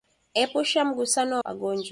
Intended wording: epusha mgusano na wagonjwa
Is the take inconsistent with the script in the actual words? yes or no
no